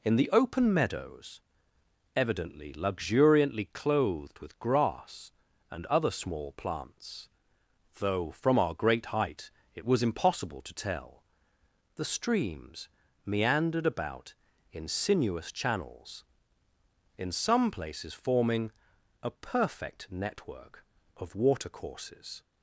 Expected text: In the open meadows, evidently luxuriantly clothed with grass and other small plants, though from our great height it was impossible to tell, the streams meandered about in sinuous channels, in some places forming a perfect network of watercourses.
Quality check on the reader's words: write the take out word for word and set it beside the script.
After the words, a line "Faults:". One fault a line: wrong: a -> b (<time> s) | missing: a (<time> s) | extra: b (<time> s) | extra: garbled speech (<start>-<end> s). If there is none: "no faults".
In the open meadows, evidently luxuriantly clothed with grass and other small plants, though from our great height it was impossible to tell, the streams meandered about in sinuous channels, in some places forming a perfect network of watercourses.
Faults:
no faults